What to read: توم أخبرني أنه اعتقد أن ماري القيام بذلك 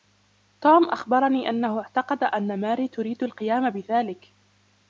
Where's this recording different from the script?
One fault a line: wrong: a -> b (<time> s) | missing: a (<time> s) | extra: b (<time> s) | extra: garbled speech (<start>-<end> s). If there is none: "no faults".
extra: تريد (2.9 s)